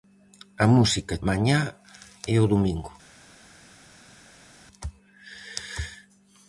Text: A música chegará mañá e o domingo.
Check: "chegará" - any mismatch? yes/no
yes